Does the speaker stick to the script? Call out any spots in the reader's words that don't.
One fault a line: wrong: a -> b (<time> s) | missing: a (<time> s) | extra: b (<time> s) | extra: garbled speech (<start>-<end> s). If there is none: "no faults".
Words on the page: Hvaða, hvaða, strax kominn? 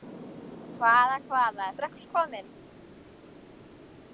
no faults